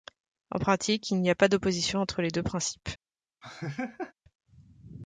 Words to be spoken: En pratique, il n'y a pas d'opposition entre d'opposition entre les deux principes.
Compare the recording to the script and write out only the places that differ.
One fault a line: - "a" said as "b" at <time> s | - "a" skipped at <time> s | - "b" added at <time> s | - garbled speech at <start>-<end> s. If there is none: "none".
- "d'opposition entre" skipped at 2.2 s